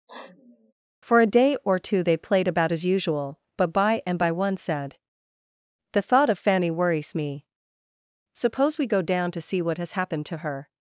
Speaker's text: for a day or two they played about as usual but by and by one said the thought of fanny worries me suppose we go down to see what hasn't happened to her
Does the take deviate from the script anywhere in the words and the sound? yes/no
yes